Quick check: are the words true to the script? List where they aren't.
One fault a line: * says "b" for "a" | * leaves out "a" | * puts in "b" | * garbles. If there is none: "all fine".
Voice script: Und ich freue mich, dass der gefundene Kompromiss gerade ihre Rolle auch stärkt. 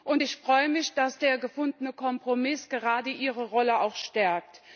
all fine